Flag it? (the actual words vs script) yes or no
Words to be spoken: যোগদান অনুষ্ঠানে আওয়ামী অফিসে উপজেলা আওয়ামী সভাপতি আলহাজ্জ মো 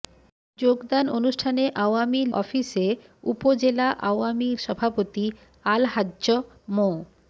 no